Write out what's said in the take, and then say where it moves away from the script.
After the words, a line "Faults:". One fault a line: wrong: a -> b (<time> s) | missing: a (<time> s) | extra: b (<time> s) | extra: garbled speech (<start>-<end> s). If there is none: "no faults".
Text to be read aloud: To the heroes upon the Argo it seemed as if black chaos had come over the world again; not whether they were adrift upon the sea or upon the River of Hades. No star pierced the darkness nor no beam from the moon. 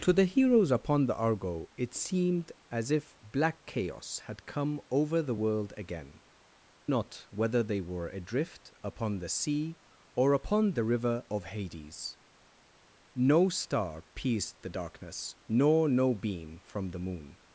To the heroes upon the Argo it seemed as if black chaos had come over the world again; not whether they were adrift upon the sea or upon the River of Hades. No star pierced the darkness nor no beam from the moon.
Faults:
no faults